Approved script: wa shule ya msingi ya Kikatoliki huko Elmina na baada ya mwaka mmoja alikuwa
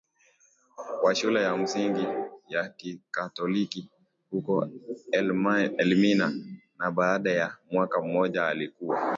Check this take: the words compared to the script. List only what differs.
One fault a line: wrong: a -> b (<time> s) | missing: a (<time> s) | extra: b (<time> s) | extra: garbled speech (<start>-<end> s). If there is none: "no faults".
no faults